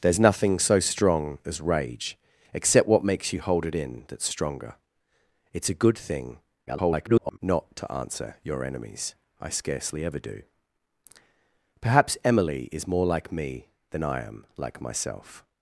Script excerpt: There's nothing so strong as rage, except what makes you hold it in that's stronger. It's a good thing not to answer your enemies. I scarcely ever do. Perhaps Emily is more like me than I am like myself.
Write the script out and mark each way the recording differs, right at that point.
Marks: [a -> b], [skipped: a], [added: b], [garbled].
There's nothing so strong as rage, except what makes you hold it in that's stronger. It's a good thing [garbled] not to answer your enemies. I scarcely ever do. Perhaps Emily is more like me than I am like myself.